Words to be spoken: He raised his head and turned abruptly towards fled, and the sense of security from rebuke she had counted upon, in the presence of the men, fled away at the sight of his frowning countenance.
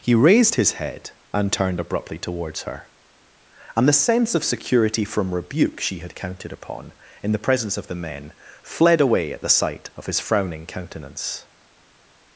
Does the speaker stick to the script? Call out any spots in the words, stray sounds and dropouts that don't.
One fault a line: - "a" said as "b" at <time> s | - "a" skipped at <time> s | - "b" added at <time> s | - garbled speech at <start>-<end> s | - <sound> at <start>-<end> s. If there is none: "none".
- "fled" said as "her" at 2.6 s